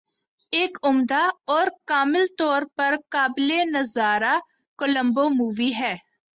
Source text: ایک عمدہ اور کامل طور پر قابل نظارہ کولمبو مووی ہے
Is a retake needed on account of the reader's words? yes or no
no